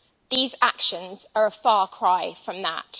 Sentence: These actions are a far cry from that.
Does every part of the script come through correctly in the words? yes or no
yes